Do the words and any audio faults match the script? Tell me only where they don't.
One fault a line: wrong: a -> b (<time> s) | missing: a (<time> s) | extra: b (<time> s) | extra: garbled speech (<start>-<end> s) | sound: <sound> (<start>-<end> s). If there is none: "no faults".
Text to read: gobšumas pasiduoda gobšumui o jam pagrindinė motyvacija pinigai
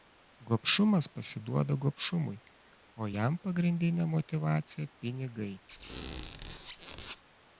sound: squeak (5.7-7.2 s)